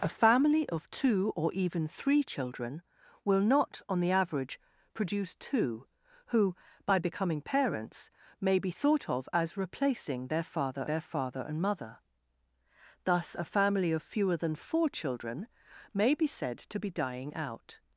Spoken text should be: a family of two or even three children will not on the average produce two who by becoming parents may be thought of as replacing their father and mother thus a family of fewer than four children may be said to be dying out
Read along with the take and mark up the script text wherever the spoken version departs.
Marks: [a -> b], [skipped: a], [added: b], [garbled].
a family of two or even three children will not on the average produce two who by becoming parents may be thought of as replacing their father [added: their father] and mother thus a family of fewer than four children may be said to be dying out